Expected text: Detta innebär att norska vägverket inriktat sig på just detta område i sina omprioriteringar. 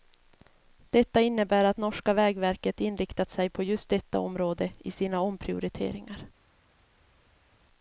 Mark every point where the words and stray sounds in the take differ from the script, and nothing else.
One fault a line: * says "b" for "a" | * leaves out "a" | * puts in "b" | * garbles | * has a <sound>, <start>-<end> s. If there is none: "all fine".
all fine